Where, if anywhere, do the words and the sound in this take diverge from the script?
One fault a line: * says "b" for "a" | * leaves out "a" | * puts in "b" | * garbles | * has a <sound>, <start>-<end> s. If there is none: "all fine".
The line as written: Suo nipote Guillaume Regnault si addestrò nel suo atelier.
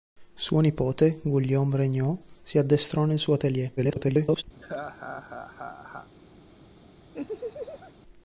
* garbles
* has a laugh, 4.5-6.1 s
* has a laugh, 7.1-7.9 s